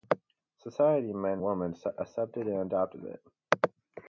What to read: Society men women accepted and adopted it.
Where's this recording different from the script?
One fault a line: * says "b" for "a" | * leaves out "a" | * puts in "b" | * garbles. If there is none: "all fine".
all fine